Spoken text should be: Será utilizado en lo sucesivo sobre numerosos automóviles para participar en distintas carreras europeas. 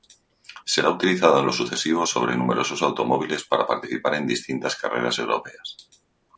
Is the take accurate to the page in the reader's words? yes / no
yes